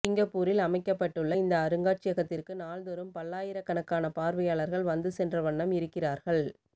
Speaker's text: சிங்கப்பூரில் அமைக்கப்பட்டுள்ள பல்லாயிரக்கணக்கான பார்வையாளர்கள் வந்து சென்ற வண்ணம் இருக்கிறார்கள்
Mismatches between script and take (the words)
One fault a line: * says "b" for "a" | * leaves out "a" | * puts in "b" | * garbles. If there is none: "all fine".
* puts in "இந்த அருங்காட்சியகத்திற்கு நாள்தோறும்"